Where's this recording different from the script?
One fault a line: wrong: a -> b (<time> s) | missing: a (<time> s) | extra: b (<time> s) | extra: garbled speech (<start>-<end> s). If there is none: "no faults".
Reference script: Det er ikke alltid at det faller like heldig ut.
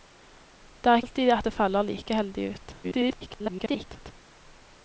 missing: ikke (1.0 s)
extra: garbled speech (2.8-4.1 s)